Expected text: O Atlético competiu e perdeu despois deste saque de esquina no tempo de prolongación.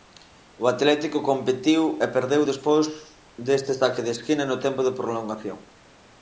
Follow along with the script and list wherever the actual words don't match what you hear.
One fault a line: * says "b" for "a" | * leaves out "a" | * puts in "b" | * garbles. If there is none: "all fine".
all fine